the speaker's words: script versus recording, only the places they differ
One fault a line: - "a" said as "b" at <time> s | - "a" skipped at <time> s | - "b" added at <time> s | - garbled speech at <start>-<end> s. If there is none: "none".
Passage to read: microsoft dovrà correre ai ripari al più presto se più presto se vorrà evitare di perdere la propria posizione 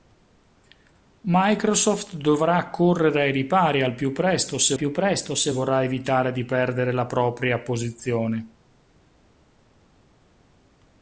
none